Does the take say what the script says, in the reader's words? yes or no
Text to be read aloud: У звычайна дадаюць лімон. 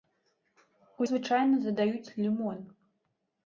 yes